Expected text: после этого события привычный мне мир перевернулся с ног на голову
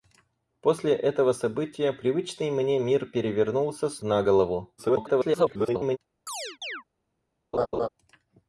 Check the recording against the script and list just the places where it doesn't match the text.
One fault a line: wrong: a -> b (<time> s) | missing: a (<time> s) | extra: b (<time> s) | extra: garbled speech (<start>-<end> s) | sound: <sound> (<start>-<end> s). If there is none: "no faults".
missing: ног (4.0 s)
extra: garbled speech (4.8-6.0 s)
sound: chirp (6.3-6.8 s)
sound: laugh (7.5-7.9 s)